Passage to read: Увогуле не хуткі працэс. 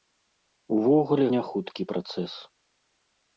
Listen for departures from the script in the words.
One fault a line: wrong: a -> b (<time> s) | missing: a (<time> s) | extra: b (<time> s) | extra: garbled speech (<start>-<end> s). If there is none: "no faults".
no faults